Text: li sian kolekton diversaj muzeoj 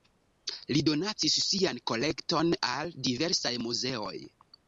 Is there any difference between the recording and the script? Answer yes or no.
yes